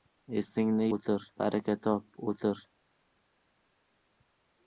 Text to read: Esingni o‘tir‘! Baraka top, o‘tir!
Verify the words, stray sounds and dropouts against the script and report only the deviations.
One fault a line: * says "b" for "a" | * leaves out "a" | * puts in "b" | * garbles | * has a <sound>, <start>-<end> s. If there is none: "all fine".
all fine